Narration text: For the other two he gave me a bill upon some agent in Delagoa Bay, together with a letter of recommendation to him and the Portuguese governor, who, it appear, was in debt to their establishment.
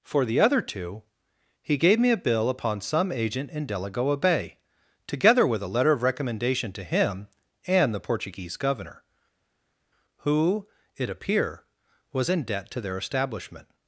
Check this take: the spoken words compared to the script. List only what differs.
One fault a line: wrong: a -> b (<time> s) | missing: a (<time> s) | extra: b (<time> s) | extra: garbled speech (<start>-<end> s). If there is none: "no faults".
no faults